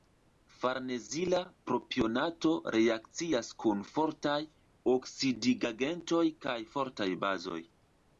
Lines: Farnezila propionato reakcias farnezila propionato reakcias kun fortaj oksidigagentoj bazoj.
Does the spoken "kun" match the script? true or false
false